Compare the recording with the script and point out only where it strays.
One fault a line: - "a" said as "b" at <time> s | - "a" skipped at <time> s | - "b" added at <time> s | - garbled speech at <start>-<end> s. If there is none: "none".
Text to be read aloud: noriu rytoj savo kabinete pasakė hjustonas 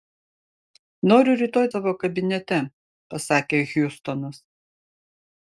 none